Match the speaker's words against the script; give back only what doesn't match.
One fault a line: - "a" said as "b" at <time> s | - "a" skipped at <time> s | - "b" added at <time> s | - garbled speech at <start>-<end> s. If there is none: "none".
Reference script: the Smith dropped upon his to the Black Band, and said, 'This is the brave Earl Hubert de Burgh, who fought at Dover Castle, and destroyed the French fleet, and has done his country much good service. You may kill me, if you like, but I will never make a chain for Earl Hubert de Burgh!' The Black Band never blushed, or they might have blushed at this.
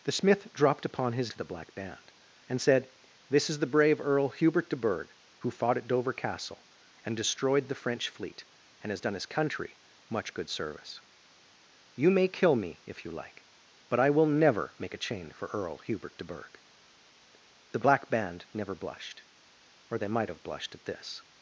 none